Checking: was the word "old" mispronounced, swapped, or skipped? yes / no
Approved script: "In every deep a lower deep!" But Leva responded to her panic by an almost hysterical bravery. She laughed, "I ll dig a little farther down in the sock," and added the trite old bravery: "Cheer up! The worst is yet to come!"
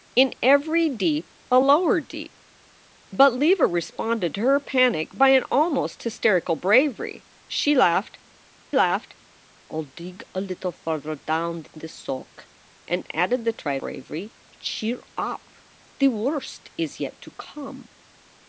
yes